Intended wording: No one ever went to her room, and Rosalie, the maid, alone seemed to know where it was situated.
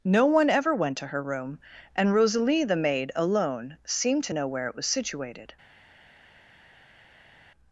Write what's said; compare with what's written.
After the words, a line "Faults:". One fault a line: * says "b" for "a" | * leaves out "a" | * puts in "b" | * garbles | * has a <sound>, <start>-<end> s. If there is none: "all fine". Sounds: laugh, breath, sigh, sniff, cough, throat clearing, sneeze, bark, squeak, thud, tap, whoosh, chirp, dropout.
No one ever went to her room, and Rosalie, the maid, alone seemed to know where it was situated.
Faults:
all fine